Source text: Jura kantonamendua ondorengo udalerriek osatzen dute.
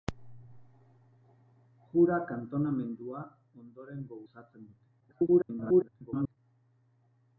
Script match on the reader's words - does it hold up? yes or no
no